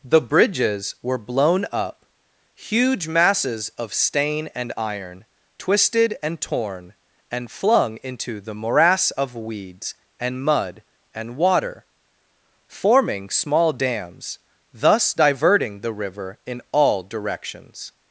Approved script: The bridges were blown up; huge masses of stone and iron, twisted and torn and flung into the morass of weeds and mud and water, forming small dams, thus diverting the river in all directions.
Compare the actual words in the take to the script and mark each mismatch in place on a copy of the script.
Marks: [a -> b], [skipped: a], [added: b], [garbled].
The bridges were blown up; huge masses of [stone -> stain] and iron, twisted and torn and flung into the morass of weeds and mud and water, forming small dams, thus diverting the river in all directions.